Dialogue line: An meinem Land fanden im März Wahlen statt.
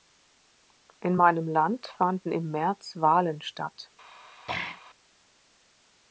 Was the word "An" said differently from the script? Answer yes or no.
yes